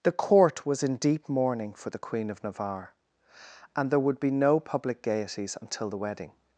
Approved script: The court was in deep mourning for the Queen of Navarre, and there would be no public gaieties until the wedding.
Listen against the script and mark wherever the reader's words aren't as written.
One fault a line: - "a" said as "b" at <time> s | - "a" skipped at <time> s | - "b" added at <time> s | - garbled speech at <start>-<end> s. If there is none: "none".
none